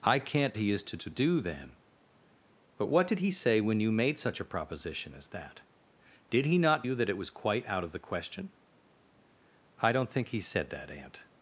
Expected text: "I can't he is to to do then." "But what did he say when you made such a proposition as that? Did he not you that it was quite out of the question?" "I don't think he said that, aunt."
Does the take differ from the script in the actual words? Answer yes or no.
no